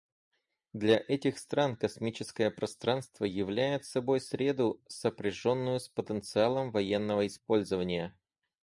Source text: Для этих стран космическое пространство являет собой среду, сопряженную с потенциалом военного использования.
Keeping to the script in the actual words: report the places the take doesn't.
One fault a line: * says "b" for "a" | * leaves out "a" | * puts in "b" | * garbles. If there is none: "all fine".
all fine